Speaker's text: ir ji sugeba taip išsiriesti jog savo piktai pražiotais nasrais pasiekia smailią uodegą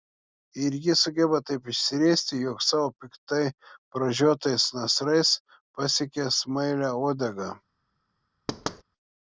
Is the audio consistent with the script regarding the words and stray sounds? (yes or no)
no